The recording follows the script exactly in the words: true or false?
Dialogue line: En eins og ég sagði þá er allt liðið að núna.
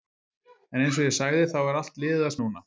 true